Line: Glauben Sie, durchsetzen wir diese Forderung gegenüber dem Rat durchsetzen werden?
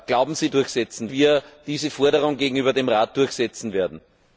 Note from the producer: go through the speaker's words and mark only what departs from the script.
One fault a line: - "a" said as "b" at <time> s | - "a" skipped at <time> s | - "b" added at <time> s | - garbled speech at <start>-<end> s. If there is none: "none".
none